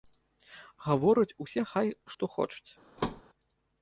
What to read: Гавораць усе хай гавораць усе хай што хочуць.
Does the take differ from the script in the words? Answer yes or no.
yes